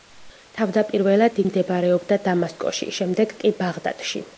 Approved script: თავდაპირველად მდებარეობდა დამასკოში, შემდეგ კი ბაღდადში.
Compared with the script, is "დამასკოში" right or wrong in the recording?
right